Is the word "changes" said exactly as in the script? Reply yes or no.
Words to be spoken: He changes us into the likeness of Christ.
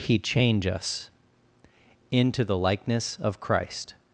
no